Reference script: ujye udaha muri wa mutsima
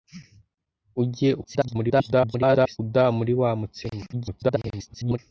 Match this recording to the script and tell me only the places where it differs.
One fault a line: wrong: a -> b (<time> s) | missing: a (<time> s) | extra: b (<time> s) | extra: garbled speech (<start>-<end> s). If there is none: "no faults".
extra: garbled speech (1.4-2.8 s)
extra: garbled speech (4.1-5.2 s)